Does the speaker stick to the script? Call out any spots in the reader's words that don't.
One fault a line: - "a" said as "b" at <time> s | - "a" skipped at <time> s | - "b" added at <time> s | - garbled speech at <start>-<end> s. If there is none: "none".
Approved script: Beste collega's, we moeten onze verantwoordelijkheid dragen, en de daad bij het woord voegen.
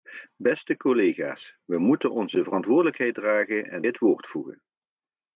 - "de daad bij" skipped at 3.8 s